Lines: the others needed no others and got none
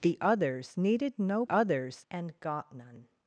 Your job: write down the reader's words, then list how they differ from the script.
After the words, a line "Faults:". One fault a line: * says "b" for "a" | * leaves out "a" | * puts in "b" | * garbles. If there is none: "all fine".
the others needed no others and got none
Faults:
all fine